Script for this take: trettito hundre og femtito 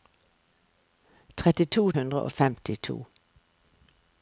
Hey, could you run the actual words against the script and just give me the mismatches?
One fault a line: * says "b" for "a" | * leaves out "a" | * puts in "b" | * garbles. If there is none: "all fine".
all fine